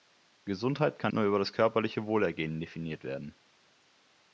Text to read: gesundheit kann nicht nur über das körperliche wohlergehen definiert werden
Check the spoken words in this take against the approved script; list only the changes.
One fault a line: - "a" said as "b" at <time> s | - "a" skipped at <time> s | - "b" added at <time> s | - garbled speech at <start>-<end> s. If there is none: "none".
- "nicht" skipped at 1.1 s